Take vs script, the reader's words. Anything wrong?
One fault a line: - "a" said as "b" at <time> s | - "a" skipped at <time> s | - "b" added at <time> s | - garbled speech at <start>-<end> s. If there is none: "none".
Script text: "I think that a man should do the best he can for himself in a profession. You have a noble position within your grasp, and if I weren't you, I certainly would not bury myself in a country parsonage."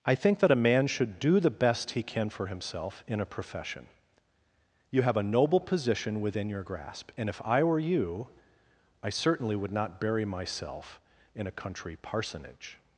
- "weren't" said as "were" at 7.6 s